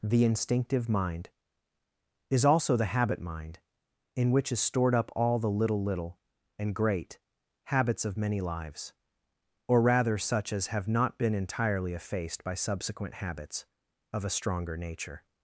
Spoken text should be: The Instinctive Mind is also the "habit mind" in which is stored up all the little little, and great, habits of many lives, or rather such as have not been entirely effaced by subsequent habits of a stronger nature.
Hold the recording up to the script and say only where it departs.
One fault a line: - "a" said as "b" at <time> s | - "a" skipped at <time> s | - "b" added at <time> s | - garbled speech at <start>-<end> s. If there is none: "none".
none